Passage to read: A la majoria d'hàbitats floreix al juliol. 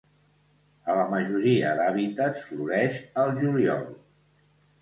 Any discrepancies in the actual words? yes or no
no